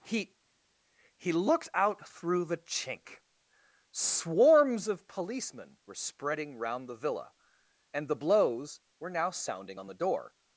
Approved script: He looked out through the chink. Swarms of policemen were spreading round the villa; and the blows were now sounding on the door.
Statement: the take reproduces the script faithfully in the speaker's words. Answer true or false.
false